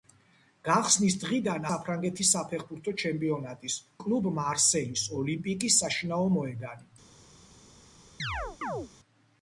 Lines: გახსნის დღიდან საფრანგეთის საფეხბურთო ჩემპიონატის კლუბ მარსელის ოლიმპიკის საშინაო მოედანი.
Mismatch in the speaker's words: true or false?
false